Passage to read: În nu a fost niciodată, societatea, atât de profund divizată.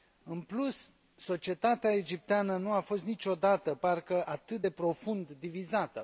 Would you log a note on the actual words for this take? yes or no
yes